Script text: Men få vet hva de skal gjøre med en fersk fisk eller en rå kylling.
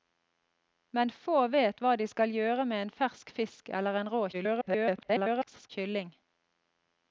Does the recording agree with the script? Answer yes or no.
no